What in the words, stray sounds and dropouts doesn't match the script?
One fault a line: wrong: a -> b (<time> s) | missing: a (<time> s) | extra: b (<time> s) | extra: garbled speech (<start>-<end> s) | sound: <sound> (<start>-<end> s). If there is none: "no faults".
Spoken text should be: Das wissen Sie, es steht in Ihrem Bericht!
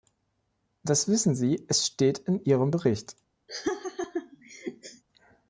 sound: laugh (3.5-5.0 s)